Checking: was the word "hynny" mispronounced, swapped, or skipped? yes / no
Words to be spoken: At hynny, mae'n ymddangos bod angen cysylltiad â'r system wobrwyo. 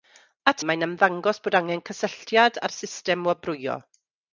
yes